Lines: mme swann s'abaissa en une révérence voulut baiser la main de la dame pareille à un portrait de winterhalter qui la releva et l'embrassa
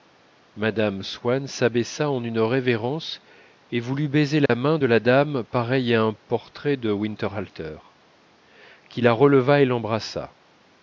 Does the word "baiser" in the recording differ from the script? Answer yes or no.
no